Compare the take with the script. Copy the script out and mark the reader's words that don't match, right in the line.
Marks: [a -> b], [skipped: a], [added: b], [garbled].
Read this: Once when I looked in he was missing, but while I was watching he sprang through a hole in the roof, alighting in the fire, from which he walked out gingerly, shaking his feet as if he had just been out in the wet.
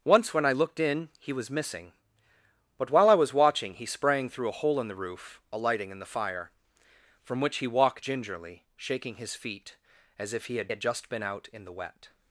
Once when I looked in he was missing, but while I was watching he sprang through a hole in the roof, alighting in the fire, from which he walked [skipped: out] gingerly, shaking his feet as if he had [added: had] just been out in the wet.